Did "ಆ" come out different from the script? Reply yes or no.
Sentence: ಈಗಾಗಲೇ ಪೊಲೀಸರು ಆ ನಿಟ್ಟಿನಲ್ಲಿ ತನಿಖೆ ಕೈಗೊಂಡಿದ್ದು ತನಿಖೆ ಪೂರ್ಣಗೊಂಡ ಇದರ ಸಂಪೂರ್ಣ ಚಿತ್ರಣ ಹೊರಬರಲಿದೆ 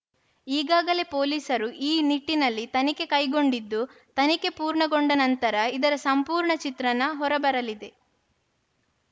yes